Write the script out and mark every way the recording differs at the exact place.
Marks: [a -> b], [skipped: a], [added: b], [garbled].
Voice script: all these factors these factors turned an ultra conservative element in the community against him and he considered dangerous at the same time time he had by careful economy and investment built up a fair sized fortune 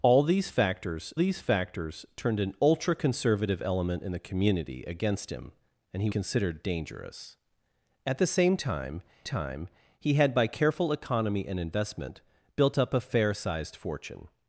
all these factors these factors turned an ultra conservative element in the community against him and he considered dangerous at the same time time he had by careful economy and investment built up a fair sized fortune